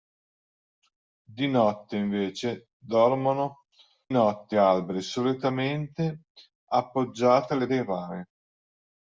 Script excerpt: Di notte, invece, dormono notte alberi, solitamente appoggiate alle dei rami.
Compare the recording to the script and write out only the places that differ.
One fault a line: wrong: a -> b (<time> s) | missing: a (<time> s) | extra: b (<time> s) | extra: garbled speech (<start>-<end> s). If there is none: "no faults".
no faults